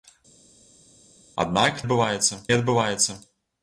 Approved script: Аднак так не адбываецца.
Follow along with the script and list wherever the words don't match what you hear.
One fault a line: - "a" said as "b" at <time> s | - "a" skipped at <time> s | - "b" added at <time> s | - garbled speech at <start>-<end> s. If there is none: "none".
- "так" said as "адбываецца" at 1.8 s